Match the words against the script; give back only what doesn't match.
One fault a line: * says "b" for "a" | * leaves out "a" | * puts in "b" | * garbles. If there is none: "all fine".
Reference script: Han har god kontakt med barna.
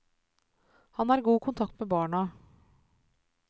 all fine